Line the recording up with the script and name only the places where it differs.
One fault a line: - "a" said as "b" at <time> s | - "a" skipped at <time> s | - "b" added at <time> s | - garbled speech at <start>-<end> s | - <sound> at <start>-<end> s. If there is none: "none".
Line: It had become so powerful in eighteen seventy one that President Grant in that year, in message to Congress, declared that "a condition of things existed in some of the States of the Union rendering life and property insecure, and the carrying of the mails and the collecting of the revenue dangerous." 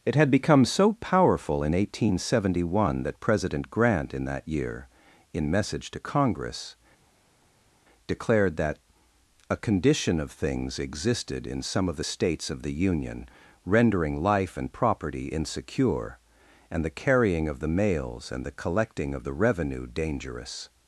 none